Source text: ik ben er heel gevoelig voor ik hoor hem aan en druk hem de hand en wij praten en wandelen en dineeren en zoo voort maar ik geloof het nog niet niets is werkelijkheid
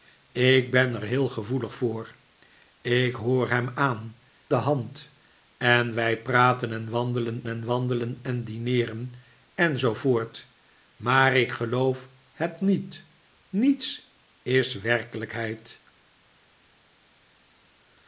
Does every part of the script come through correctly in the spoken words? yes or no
no